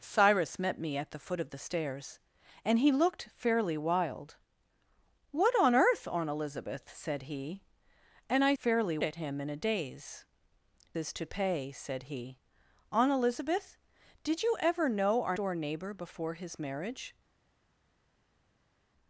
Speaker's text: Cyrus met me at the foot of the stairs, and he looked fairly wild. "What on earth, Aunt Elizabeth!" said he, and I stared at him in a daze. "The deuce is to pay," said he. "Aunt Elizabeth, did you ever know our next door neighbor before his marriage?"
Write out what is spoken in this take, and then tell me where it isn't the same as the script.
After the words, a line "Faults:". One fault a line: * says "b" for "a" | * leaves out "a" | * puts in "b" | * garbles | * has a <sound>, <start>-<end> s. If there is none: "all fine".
Cyrus met me at the foot of the stairs, and he looked fairly wild. "What on earth, Aunt Elizabeth!" said he, and I fairly at him in a daze. "Is to pay," said he. "Aunt Elizabeth, did you ever know our door neighbor before his marriage?"
Faults:
* says "fairly" for "stared"
* leaves out "The deuce"
* leaves out "next"